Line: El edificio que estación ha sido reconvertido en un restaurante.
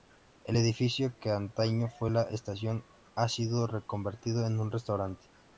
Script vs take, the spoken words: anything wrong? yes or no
yes